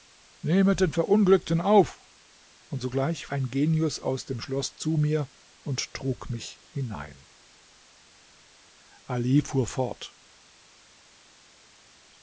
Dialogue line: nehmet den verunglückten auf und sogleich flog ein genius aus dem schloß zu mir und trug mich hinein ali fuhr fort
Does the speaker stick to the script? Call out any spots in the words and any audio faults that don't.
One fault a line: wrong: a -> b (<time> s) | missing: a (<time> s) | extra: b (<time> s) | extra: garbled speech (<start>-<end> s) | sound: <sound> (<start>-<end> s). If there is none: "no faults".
missing: flog (3.3 s)